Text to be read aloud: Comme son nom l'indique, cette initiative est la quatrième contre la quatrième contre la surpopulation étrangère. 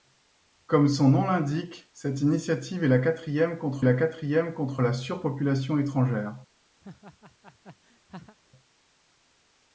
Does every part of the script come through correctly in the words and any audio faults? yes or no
no